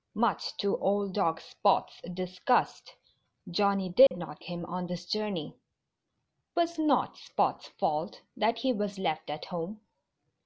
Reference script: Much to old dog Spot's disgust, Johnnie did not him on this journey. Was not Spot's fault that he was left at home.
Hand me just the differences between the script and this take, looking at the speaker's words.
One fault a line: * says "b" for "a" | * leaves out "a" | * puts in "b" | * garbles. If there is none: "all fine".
all fine